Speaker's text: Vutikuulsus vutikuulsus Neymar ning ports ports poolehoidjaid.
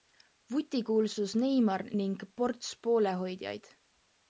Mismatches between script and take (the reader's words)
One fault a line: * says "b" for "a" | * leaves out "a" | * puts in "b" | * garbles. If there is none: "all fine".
* leaves out "vutikuulsus"
* leaves out "ports"